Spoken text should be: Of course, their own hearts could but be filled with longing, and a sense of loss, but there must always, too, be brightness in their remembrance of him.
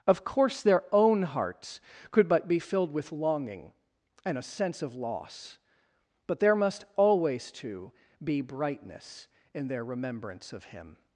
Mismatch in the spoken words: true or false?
false